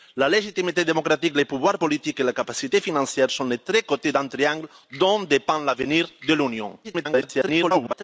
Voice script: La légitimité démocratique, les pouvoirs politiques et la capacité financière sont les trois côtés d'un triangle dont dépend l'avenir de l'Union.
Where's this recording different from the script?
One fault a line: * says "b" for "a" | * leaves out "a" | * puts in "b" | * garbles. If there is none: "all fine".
* garbles